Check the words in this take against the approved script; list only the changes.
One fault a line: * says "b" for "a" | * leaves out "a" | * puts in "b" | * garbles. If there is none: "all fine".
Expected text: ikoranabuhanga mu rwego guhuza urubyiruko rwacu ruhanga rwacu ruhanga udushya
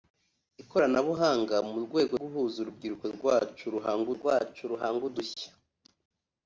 all fine